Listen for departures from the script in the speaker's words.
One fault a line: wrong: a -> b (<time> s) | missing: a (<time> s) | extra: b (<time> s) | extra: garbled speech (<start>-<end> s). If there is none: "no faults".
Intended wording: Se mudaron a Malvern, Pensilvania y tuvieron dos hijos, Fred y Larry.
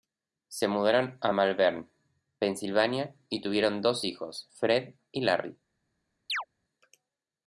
no faults